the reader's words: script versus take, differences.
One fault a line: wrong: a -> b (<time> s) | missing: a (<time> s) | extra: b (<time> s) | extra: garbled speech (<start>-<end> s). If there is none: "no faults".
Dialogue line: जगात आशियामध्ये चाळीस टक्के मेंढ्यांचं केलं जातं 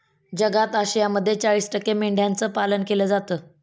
extra: पालन (2.5 s)